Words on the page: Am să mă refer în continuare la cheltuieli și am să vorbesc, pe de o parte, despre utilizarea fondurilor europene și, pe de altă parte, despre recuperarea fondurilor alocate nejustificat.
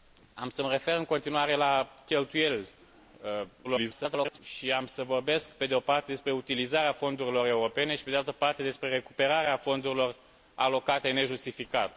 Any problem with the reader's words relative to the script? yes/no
yes